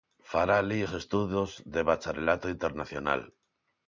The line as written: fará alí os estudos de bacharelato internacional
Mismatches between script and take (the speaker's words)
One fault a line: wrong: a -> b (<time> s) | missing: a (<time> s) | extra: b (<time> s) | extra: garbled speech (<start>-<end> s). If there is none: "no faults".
no faults